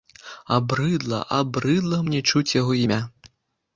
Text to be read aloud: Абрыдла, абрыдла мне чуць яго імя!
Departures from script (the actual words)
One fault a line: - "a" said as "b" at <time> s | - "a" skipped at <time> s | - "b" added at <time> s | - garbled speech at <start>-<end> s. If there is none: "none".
none